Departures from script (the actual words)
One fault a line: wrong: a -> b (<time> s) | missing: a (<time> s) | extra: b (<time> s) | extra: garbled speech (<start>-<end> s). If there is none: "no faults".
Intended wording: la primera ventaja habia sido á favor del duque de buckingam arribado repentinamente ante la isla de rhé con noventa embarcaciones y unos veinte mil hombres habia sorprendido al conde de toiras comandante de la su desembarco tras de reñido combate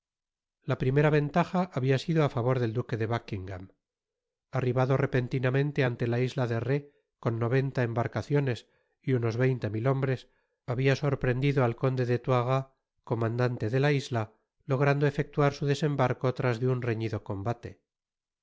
extra: isla logrando efectuar (13.9 s)
extra: un (16.7 s)